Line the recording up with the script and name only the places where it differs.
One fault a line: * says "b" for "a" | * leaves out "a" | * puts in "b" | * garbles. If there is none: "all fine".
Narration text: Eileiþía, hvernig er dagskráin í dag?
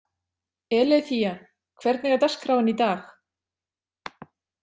all fine